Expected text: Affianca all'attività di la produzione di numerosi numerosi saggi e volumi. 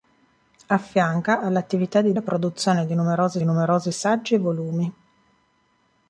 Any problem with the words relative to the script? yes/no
no